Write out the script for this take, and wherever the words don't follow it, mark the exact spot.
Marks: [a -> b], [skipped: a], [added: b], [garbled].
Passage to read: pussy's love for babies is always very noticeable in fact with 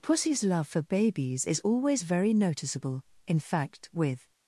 pussy's love for babies is always very noticeable in fact with